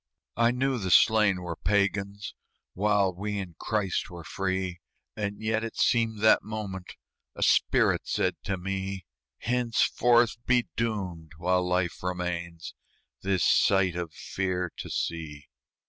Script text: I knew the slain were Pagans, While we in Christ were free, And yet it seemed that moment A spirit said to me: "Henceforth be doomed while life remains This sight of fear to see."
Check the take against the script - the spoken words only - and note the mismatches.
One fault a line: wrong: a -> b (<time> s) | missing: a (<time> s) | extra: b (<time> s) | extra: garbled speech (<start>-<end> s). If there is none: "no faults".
no faults